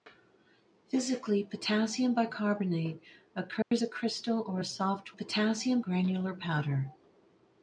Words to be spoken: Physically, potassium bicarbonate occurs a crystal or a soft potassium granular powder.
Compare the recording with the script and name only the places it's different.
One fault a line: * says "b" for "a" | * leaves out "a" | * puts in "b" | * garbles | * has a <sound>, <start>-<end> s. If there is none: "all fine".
* has a dropout, 3.6-3.7 s